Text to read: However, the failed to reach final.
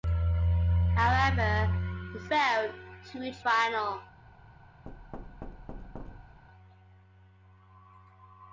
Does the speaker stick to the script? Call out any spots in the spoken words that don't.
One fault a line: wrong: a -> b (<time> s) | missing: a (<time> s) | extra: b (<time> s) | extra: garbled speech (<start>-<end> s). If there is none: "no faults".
no faults